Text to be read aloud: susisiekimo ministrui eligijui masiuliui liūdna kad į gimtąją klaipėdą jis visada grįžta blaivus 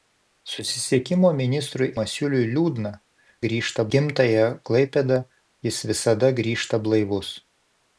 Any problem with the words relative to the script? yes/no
yes